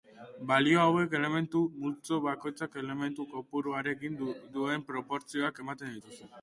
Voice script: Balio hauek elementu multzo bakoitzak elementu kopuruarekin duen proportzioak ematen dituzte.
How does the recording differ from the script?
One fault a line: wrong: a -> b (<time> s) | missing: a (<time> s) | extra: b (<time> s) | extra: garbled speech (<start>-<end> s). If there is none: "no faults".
no faults